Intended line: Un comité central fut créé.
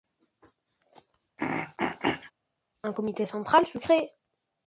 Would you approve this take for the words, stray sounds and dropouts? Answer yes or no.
no